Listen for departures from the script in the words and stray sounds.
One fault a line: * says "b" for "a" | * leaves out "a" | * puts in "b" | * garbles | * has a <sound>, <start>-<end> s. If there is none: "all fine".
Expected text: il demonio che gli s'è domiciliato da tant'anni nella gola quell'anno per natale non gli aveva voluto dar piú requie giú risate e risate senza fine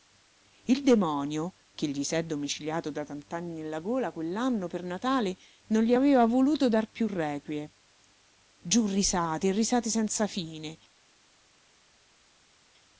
all fine